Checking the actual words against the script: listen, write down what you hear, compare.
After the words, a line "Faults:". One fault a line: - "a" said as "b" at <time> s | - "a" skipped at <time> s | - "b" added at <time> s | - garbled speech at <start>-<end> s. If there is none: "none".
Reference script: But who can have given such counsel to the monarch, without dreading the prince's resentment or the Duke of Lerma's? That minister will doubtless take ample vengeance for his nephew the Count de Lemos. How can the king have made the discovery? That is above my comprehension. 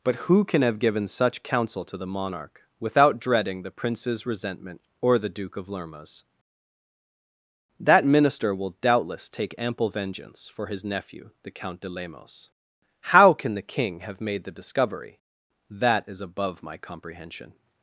But who can have given such counsel to the monarch, without dreading the prince's resentment or the Duke of Lerma's? That minister will doubtless take ample vengeance for his nephew the Count de Lemos. How can the king have made the discovery? That is above my comprehension.
Faults:
none